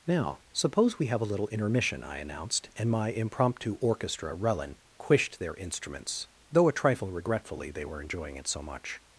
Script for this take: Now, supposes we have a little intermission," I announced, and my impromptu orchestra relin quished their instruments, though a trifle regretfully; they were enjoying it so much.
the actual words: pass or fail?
fail